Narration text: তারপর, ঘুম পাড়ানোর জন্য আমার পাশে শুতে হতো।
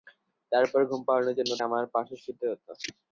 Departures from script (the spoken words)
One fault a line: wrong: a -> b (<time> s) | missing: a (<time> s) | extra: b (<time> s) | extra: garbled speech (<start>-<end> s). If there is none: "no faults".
no faults